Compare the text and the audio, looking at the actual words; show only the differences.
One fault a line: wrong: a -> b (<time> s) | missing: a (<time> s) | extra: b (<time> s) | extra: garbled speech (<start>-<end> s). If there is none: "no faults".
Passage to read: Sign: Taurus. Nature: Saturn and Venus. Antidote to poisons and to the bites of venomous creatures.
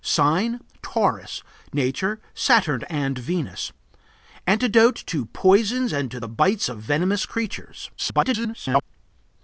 extra: garbled speech (8.0-8.8 s)